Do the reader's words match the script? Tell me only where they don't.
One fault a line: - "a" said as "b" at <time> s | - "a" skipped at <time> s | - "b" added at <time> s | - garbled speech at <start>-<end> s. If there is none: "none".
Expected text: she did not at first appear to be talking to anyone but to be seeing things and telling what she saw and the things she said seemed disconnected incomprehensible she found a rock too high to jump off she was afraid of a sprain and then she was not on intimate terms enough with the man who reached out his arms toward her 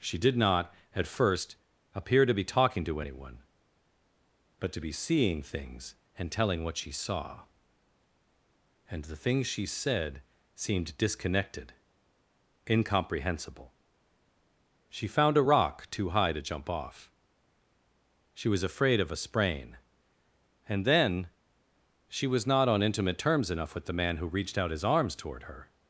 none